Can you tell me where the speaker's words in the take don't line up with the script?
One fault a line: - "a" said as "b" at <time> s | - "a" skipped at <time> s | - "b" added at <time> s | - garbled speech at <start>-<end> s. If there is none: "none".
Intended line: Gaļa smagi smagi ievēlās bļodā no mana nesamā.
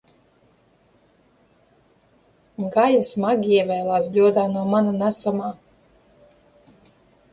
- "smagi" skipped at 3.5 s